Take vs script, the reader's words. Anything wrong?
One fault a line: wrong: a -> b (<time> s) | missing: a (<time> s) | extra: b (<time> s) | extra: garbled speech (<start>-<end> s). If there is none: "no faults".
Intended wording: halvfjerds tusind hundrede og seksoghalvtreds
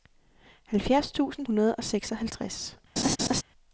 no faults